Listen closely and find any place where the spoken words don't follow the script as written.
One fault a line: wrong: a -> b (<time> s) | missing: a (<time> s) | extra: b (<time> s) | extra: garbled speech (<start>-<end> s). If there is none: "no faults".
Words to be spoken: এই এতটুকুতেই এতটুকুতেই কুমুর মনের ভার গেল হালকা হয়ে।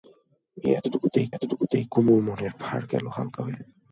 no faults